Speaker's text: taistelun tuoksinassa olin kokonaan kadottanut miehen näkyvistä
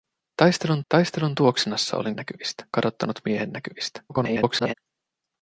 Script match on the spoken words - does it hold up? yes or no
no